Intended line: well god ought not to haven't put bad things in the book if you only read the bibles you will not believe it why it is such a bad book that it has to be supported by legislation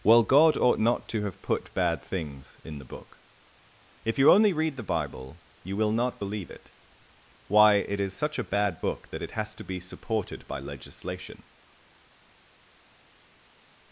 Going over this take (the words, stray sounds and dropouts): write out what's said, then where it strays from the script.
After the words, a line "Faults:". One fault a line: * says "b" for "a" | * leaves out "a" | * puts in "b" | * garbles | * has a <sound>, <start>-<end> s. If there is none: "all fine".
well god ought not to have put bad things in the book if you only read the bible you will not believe it why it is such a bad book that it has to be supported by legislation
Faults:
* says "have" for "haven't"
* says "bible" for "bibles"